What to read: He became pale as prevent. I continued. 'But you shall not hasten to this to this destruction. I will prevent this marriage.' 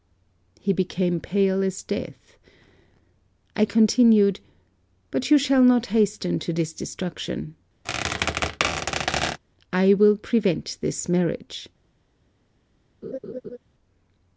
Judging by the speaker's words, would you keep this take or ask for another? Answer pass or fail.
fail